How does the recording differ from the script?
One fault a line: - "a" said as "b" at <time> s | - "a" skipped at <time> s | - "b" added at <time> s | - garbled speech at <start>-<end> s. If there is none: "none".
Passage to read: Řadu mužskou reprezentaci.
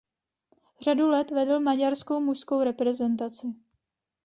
- "let vedl maďarskou" added at 1.1 s